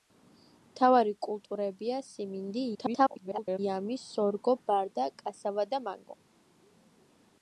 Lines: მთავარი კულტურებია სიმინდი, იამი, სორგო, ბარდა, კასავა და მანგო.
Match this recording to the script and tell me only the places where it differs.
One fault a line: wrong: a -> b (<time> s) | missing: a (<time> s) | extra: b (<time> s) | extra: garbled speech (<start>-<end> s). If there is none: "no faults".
extra: garbled speech (2.7-3.6 s)